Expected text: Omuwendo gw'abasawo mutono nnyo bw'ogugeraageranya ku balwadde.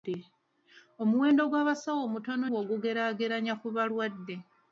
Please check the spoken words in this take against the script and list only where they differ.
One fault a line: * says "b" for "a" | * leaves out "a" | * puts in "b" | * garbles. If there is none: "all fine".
* leaves out "nnyo"